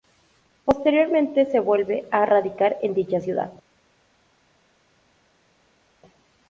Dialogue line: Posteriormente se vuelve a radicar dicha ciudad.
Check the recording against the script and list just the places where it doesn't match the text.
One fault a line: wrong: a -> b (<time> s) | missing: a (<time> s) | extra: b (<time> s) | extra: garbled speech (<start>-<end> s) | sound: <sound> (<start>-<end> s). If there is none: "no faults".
extra: en (2.8 s)